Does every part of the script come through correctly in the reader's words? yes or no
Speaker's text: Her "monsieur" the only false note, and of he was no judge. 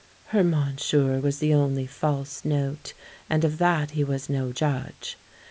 no